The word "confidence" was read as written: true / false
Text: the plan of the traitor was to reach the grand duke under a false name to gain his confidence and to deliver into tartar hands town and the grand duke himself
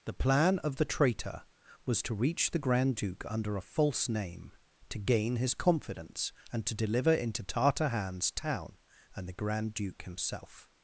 true